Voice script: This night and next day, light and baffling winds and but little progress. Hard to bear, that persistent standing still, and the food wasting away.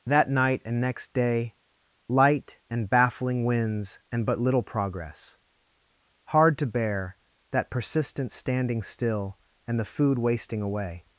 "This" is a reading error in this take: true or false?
true